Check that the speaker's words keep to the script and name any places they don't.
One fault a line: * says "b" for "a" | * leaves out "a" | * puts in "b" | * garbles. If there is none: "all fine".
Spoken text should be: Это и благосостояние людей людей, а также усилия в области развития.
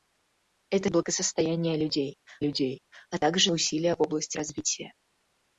all fine